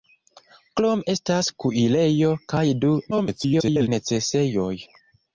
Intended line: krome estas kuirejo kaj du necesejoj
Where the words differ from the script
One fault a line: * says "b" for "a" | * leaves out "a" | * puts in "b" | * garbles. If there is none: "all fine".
* garbles